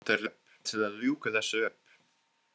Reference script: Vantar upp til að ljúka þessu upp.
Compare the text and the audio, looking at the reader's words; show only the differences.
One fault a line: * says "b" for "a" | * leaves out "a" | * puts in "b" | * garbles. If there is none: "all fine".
all fine